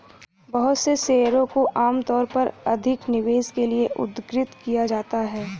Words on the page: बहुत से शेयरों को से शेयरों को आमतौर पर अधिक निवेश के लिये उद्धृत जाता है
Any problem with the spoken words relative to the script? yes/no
yes